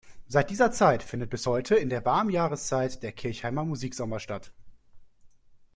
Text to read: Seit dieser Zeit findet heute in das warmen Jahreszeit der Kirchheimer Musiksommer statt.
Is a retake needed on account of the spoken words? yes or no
yes